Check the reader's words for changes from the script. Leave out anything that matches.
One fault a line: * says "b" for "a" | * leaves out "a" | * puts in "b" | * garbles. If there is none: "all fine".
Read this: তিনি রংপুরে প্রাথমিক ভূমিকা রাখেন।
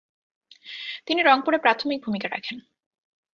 all fine